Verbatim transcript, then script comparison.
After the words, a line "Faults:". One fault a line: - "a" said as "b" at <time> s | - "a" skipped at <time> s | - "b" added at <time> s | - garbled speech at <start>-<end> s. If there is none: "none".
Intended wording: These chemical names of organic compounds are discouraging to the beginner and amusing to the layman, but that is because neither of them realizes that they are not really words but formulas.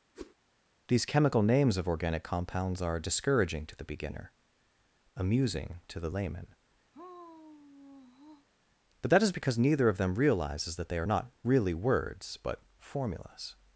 These chemical names of organic compounds are discouraging to the beginner amusing to the layman, but that is because neither of them realizes that they are not really words but formulas.
Faults:
- "and" skipped at 4.3 s